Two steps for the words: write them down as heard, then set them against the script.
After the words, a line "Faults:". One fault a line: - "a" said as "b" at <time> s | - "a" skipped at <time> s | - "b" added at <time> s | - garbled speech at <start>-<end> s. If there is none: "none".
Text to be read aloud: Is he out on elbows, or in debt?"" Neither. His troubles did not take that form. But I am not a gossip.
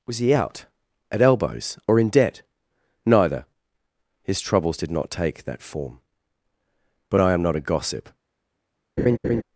Was he out at elbows, or in debt?"" Neither. His troubles did not take that form. But I am not a gossip.
Faults:
- "Is" said as "Was" at 0.1 s
- "on" said as "at" at 1.1 s